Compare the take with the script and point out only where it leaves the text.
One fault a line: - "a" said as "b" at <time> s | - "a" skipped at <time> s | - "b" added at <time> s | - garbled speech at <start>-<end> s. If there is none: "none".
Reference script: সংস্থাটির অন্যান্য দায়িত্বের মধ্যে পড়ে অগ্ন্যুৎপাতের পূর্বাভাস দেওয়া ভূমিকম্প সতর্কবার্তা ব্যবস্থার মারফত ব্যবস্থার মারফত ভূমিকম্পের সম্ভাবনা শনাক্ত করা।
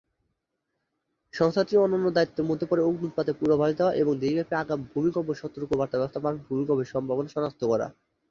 - "এবং দেশব্যাপী আগাম" added at 4.0 s
- "ব্যবস্থার মারফত" skipped at 6.4 s